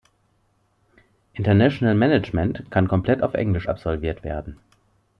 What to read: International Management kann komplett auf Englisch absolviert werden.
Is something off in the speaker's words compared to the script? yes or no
no